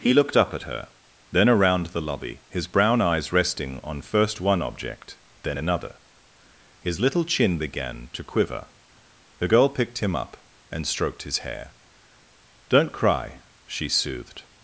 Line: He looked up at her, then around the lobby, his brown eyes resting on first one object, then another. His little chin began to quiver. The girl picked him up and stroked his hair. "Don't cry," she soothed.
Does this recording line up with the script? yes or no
yes